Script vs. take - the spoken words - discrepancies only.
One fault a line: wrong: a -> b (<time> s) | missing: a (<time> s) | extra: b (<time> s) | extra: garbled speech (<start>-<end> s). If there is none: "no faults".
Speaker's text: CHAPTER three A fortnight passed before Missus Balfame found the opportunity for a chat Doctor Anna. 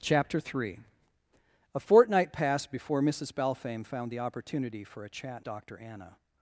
no faults